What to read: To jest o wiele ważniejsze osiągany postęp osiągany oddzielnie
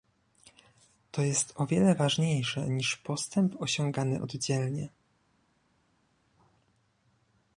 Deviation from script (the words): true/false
true